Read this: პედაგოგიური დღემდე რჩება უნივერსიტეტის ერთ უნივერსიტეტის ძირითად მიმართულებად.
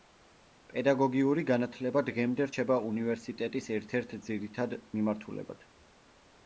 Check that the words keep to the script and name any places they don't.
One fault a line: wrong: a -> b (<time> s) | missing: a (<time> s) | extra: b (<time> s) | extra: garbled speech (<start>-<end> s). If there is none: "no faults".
extra: განათლება (1.5 s)
wrong: უნივერსიტეტის -> ერთ (4.0 s)